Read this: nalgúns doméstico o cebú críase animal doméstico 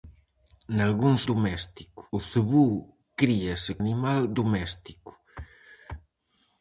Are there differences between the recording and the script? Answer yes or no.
no